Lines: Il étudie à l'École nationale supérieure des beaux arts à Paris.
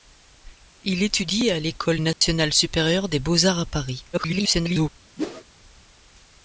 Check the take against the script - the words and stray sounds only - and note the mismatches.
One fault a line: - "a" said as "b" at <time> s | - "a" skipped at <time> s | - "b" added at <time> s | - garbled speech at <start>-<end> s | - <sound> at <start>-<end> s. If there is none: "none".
- dropout at 2.1-2.2 s
- garbled speech at 4.1-4.9 s
- whoosh at 5.2-5.4 s